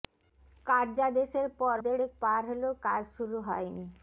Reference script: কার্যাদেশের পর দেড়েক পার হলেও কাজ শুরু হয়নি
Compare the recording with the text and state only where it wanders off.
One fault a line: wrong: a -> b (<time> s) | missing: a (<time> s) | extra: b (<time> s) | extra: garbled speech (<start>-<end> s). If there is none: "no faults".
no faults